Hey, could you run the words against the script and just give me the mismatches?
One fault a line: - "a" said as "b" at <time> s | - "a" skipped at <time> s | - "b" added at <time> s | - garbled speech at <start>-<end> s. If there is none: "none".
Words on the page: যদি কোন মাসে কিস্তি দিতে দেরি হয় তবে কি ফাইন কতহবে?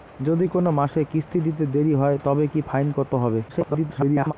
- garbled speech at 3.5-4.3 s